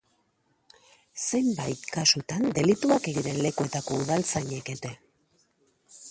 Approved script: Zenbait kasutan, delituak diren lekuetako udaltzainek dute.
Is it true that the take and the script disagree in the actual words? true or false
false